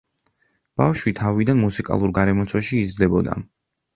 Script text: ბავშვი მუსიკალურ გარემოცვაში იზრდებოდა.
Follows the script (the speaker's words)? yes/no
no